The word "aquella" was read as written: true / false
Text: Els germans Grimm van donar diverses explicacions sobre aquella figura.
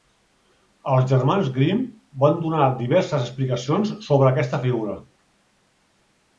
false